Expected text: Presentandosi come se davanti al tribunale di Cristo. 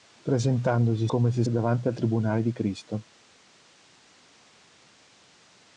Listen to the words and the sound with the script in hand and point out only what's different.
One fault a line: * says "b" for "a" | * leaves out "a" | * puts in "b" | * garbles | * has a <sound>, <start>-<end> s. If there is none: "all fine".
all fine